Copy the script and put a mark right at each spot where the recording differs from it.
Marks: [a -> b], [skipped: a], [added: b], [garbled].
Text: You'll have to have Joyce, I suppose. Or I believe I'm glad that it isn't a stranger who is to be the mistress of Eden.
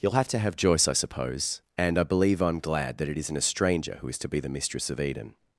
You'll have to have Joyce, I suppose. [Or -> And] I believe I'm glad that it isn't a stranger who is to be the mistress of Eden.